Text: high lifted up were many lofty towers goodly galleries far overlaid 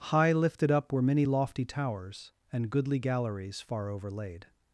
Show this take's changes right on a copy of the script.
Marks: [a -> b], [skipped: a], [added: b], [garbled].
high lifted up were many lofty towers [added: and] goodly galleries far overlaid